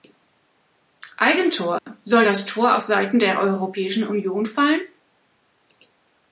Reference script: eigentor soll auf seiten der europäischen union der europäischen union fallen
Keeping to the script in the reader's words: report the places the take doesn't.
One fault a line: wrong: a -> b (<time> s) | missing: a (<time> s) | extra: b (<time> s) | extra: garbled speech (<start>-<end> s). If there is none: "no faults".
extra: das tor (2.2 s)
missing: der europäischen union (4.5 s)